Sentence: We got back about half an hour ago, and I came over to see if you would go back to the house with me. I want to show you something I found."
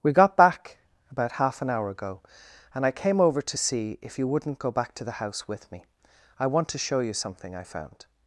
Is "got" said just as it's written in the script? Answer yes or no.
yes